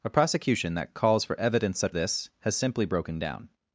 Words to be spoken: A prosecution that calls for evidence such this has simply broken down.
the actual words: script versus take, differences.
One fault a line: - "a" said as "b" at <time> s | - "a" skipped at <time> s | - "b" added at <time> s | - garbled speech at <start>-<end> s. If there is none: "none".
none